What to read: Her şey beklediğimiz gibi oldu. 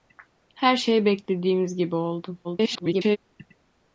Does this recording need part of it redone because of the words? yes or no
yes